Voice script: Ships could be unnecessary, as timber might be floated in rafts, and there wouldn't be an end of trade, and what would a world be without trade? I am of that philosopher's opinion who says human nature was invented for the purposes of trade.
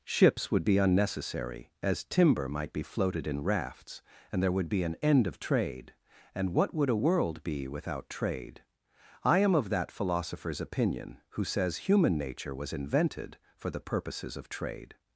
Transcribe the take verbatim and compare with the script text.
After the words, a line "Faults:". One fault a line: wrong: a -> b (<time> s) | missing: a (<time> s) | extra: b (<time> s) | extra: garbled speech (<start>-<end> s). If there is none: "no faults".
Ships would be unnecessary, as timber might be floated in rafts, and there would be an end of trade, and what would a world be without trade? I am of that philosopher's opinion who says human nature was invented for the purposes of trade.
Faults:
wrong: could -> would (0.5 s)
wrong: wouldn't -> would (4.5 s)